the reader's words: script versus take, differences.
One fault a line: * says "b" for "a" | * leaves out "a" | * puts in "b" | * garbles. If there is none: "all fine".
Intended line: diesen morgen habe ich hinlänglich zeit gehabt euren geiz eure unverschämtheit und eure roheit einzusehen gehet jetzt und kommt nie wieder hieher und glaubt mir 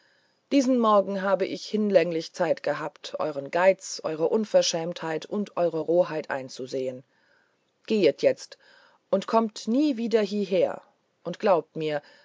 all fine